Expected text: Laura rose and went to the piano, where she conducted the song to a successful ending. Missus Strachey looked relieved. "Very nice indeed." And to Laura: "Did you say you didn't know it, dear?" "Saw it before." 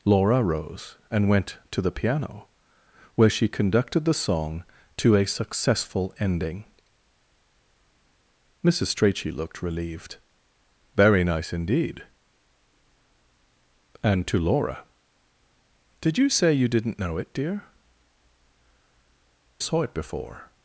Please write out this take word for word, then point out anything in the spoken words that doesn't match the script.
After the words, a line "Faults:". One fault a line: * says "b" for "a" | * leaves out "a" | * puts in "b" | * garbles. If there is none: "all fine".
Laura rose and went to the piano, where she conducted the song to a successful ending. Missus Strachey looked relieved. "Very nice indeed." And to Laura: "Did you say you didn't know it, dear?" "Saw it before."
Faults:
all fine